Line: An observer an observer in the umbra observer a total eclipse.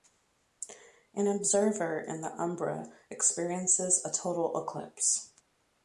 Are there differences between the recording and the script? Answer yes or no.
yes